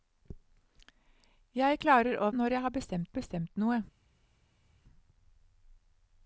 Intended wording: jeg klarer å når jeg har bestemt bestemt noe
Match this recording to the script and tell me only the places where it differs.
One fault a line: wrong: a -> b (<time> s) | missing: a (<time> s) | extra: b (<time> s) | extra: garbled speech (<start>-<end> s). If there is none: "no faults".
no faults